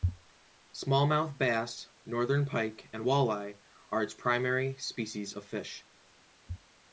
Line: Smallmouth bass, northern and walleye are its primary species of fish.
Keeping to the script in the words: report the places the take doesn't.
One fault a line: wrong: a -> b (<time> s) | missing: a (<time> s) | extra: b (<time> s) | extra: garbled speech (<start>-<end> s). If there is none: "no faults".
extra: pike (2.4 s)